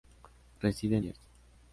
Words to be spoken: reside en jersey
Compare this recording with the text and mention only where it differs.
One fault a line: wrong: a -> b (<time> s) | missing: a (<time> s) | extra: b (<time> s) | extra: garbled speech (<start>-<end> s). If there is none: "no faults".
no faults